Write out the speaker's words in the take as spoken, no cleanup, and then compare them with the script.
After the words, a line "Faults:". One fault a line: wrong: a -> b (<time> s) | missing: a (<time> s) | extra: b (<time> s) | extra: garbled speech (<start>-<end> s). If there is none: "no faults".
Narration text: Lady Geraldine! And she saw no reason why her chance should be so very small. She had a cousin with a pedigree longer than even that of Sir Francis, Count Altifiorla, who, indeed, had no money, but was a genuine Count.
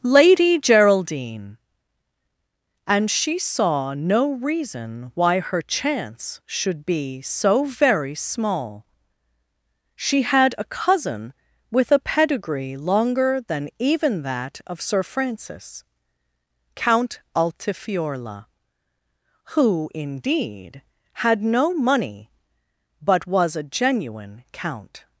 Lady Geraldine! And she saw no reason why her chance should be so very small. She had a cousin with a pedigree longer than even that of Sir Francis, Count Altifiorla, who, indeed, had no money, but was a genuine Count.
Faults:
no faults